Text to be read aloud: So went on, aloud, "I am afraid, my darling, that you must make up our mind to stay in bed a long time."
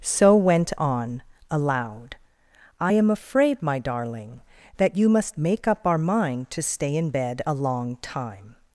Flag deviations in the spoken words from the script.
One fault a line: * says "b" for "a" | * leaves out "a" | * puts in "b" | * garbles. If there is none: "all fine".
all fine